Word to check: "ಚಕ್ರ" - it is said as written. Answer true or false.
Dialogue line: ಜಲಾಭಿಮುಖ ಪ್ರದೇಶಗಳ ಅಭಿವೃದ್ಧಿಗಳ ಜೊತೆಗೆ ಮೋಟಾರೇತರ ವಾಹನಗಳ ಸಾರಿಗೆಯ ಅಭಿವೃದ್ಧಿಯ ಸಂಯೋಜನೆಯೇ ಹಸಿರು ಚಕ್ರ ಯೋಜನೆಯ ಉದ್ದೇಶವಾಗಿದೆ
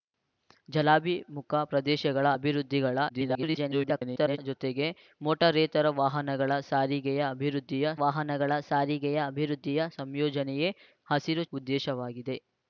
false